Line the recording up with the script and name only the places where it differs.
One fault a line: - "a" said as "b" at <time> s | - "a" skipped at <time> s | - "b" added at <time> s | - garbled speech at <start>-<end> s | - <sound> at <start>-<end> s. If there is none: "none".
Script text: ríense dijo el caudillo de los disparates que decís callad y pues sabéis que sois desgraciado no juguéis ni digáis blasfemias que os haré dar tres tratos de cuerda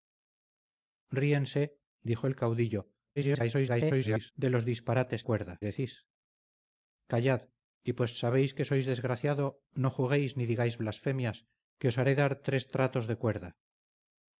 - garbled speech at 3.2-4.3 s
- "que" said as "cuerda" at 5.3 s